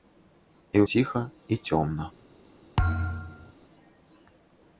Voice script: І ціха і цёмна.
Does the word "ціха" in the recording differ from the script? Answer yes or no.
no